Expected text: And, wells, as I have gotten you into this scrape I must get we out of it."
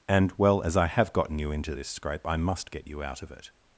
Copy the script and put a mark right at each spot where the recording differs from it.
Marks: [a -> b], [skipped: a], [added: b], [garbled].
And, [wells, -> well] as I have gotten you into this scrape I must get [we -> you] out of it."